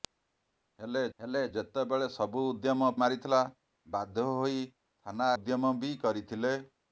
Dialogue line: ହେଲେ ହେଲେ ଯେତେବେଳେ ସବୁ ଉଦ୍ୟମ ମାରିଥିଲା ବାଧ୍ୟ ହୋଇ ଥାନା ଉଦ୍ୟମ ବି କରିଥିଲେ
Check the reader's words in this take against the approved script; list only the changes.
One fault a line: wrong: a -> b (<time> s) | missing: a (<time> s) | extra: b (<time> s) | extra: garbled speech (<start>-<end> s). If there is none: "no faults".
no faults